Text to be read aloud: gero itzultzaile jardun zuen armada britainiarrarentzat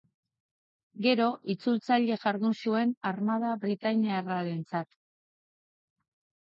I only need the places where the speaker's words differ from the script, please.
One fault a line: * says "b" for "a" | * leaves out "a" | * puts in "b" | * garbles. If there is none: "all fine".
all fine